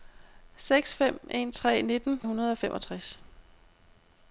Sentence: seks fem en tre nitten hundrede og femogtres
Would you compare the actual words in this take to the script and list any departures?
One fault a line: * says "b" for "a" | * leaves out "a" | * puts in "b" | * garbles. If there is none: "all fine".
all fine